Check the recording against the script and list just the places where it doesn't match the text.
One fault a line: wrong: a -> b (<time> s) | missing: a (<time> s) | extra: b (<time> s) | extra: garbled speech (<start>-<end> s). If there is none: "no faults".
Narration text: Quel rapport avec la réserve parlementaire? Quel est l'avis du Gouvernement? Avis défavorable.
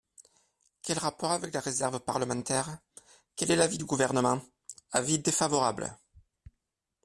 no faults